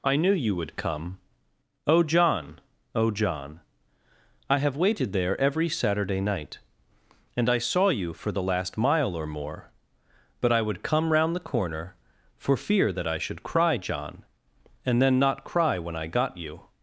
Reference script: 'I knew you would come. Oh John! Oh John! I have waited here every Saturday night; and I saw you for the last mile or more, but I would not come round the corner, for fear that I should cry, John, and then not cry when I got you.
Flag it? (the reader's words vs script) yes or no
yes